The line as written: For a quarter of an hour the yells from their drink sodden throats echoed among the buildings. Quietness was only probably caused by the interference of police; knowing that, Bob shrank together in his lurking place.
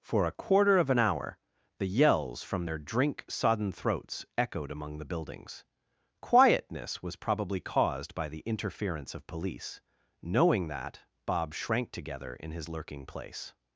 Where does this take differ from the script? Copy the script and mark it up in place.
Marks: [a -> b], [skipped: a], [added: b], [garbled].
For a quarter of an hour the yells from their drink sodden throats echoed among the buildings. Quietness was [skipped: only] probably caused by the interference of police; knowing that, Bob shrank together in his lurking place.